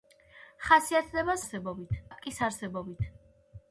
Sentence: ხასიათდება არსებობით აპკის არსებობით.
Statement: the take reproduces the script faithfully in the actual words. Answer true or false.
true